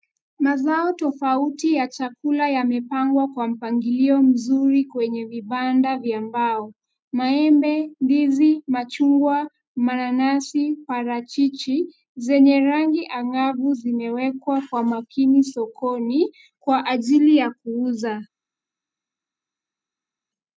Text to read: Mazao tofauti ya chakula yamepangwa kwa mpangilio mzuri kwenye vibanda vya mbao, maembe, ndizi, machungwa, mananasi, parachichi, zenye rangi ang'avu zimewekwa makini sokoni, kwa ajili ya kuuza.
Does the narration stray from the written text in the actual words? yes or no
yes